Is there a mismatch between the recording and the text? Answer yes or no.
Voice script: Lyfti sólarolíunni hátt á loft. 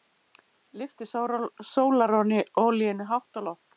no